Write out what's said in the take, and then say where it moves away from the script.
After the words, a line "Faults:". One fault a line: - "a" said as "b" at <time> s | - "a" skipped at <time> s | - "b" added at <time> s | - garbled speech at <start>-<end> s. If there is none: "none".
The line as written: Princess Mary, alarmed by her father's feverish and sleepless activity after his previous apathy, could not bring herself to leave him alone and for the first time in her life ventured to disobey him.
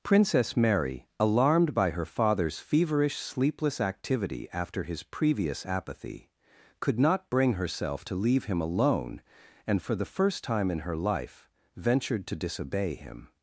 Princess Mary, alarmed by her father's feverish sleepless activity after his previous apathy, could not bring herself to leave him alone and for the first time in her life ventured to disobey him.
Faults:
- "and" skipped at 3.2 s